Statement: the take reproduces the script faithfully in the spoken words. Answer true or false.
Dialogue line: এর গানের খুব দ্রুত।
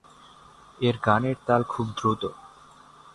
false